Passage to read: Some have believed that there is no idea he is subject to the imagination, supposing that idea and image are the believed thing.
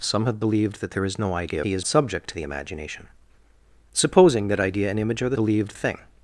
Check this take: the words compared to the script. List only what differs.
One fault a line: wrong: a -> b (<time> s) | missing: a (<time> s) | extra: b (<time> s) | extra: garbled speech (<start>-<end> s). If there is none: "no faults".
no faults